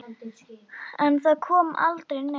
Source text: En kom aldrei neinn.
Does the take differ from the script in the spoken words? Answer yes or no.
yes